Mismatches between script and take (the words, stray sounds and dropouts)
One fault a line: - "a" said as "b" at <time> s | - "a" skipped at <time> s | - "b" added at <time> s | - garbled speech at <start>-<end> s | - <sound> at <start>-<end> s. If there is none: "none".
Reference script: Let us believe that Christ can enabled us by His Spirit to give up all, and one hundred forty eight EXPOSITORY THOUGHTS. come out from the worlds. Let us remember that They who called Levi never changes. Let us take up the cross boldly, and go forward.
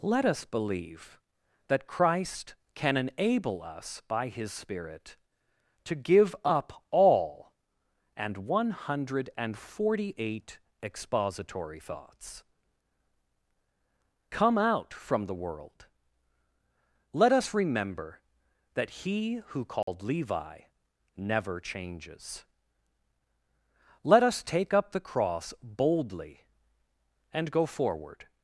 - "enabled" said as "enable" at 3.0 s
- "worlds" said as "world" at 15.4 s
- "They" said as "He" at 19.1 s
- dropout at 19.8-19.9 s